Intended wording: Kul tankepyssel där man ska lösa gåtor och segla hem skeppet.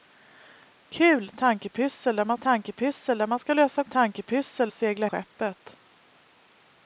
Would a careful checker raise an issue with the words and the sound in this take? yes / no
yes